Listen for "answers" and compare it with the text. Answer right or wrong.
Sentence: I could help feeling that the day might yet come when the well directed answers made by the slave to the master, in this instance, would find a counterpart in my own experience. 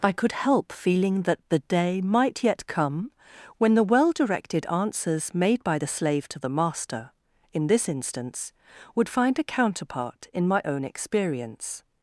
right